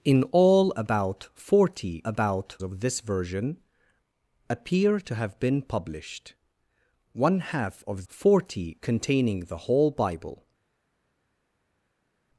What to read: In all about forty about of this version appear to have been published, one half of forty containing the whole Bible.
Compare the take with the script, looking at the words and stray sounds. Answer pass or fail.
pass